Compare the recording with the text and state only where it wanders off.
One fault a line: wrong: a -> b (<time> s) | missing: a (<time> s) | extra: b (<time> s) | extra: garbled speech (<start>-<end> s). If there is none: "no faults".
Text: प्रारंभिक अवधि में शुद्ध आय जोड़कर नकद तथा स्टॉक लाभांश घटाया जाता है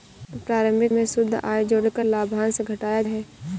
missing: अवधि (0.9 s)
missing: नकद तथा स्टॉक (2.0 s)
missing: जाता (3.0 s)